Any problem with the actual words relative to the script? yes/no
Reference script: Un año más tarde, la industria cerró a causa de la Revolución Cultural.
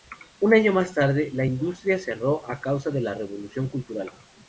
no